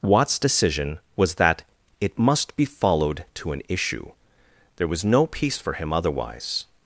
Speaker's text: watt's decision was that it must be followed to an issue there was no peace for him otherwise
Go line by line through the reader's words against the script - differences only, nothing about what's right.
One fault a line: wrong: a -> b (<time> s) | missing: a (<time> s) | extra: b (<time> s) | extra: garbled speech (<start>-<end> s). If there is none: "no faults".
no faults